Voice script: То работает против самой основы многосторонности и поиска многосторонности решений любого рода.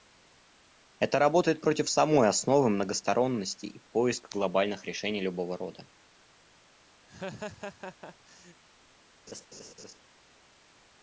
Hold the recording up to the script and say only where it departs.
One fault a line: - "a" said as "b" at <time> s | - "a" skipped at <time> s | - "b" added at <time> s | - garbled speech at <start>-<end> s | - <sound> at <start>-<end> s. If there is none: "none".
- "То" said as "Это" at 1.0 s
- "многосторонности" said as "глобальных" at 4.3 s
- laugh at 7.1-8.6 s
- laugh at 9.3-10.0 s